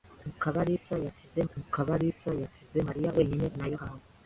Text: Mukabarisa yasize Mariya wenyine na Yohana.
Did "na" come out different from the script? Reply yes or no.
no